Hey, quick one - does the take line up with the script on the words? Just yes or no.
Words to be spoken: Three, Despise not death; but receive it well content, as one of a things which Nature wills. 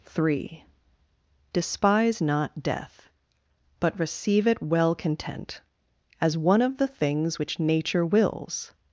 no